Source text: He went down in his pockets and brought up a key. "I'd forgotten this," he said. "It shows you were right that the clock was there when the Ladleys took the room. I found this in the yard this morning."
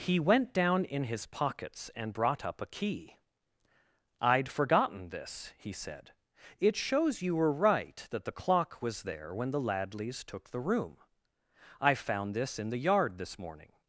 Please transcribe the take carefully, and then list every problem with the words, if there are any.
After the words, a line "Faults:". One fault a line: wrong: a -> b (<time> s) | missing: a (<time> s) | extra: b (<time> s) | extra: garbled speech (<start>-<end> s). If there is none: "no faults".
He went down in his pockets and brought up a key. "I'd forgotten this," he said. "It shows you were right that the clock was there when the Ladleys took the room. I found this in the yard this morning."
Faults:
no faults